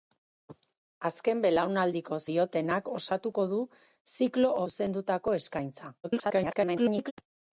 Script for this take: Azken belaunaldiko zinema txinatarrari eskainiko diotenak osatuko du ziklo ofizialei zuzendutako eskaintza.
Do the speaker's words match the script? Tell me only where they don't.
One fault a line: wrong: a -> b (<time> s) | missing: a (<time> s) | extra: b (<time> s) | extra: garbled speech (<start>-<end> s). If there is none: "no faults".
missing: zinema txinatarrari eskainiko (2.2 s)
missing: ofizialei (4.6 s)
extra: garbled speech (6.0-7.1 s)